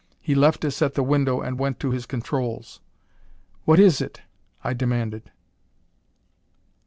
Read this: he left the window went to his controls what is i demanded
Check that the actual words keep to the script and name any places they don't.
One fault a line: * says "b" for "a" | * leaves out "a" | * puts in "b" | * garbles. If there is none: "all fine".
* puts in "us at"
* puts in "and"
* puts in "it"